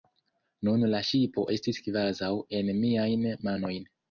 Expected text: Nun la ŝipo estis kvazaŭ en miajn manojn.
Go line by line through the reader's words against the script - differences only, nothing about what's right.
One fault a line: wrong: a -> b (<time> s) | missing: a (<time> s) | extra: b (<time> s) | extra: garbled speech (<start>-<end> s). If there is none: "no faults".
no faults